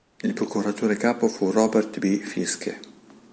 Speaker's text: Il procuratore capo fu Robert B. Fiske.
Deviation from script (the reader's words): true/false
false